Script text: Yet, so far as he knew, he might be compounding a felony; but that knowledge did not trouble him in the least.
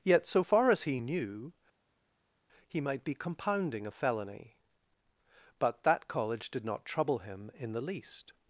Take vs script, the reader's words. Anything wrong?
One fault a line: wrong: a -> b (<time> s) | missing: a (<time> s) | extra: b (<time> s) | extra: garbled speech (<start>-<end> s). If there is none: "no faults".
wrong: knowledge -> college (6.1 s)